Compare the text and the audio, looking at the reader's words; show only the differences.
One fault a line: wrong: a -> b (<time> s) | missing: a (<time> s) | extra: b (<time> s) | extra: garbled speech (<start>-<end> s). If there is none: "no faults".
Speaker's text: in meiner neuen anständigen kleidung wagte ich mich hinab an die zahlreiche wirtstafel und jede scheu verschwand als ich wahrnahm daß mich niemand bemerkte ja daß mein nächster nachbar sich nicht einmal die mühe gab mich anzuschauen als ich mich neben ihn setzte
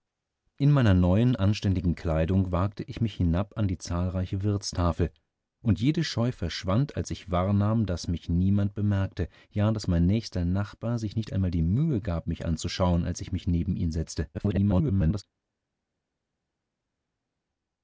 extra: garbled speech (14.3-15.2 s)